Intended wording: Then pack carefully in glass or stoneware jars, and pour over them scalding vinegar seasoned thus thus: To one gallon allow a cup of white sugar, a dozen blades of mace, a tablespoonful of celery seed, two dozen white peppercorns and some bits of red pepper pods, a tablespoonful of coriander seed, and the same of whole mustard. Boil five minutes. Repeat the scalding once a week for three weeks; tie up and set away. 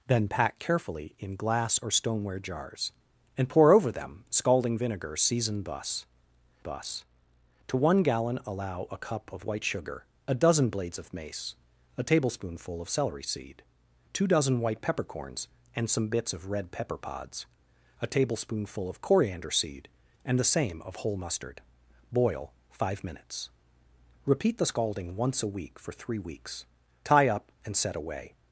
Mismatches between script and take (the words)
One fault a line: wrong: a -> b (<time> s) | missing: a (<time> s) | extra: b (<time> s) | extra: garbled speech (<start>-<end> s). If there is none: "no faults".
no faults